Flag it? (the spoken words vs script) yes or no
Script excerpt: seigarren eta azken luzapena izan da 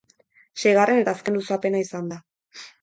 no